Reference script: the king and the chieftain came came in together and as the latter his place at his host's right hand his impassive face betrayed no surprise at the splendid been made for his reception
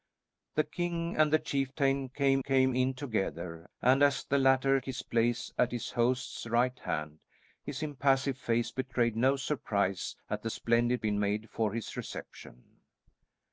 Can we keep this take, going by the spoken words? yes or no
yes